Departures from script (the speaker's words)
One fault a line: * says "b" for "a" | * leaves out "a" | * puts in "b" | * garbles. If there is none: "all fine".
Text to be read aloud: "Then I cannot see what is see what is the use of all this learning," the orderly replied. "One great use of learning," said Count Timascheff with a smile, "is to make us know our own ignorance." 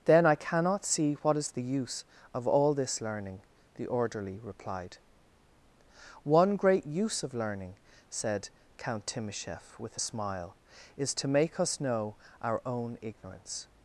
* leaves out "see what is"